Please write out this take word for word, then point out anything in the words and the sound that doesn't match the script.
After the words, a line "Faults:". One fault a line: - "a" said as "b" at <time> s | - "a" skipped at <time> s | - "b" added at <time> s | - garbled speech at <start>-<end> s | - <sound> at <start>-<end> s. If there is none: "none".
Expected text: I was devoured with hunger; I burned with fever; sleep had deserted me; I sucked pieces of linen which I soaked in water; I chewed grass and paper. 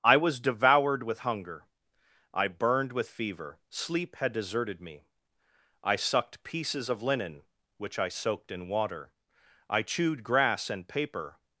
I was devoured with hunger; I burned with fever; sleep had deserted me; I sucked pieces of linen which I soaked in water; I chewed grass and paper.
Faults:
none